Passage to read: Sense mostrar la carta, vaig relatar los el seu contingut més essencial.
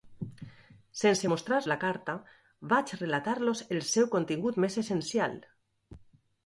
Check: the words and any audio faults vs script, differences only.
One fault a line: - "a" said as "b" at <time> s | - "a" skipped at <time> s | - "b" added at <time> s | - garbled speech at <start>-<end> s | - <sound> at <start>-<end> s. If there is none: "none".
none